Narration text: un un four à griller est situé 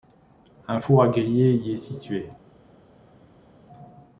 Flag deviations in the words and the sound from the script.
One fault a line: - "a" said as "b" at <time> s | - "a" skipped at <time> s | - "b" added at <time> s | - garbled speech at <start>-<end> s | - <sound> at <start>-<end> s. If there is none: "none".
- "un" skipped at 0.8 s
- "y" added at 1.5 s